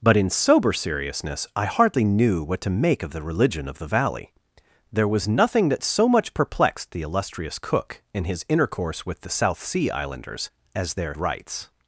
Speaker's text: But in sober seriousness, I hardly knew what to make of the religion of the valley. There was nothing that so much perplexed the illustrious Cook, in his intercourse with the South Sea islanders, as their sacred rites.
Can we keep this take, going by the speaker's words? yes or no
no